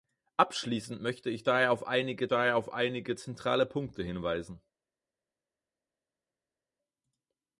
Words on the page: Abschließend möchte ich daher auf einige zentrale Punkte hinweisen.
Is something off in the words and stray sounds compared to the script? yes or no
yes